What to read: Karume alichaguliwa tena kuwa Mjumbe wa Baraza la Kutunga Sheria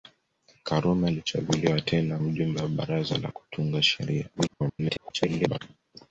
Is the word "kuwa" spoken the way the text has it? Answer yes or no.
no